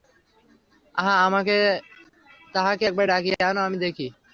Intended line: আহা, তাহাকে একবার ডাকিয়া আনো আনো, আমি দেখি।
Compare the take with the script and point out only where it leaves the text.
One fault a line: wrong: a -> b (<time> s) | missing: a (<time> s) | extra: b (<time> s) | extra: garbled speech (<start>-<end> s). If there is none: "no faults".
missing: আনো (3.6 s)